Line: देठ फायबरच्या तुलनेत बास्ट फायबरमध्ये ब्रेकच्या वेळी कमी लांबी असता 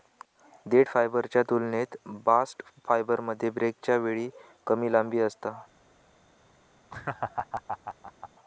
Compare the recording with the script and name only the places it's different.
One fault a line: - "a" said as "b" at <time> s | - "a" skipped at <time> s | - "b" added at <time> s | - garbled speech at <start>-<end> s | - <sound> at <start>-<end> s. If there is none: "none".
- laugh at 6.9-8.3 s